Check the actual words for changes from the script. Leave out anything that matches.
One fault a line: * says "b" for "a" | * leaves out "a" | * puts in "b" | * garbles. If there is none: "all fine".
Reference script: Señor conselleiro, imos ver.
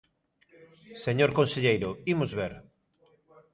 all fine